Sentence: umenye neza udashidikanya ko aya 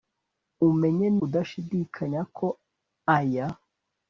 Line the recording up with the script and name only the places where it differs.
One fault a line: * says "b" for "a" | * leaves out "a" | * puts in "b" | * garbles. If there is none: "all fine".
* leaves out "neza"